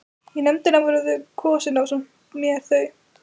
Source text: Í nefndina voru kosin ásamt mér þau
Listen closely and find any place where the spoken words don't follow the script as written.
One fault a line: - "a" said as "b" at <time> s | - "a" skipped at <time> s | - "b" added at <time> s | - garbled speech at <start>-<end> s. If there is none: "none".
none